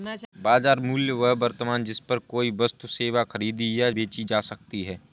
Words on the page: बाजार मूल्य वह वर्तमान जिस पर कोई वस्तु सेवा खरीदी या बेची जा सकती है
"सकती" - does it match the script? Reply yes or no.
yes